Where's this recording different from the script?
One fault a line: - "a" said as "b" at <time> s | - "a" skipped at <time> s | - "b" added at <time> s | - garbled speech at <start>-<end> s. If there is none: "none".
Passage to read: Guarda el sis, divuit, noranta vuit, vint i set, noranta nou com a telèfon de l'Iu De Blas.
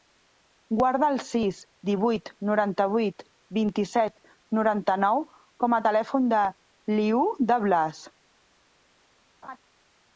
none